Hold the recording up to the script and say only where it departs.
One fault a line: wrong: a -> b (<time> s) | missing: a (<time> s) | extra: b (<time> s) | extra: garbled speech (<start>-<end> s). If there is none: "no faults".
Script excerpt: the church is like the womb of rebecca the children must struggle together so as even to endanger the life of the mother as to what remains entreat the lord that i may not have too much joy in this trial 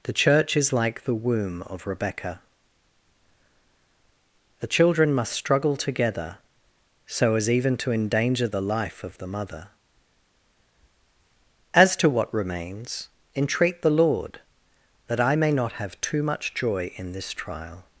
no faults